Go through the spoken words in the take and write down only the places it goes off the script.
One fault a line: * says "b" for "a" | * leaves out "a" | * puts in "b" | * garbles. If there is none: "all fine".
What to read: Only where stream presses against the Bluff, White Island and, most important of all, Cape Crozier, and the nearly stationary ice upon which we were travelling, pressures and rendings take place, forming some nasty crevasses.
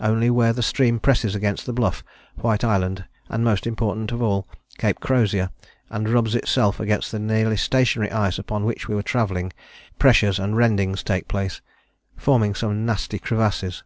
* puts in "the"
* puts in "rubs itself against"